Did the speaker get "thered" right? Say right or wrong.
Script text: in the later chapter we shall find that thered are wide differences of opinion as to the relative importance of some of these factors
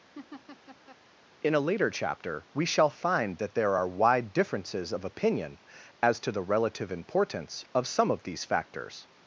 wrong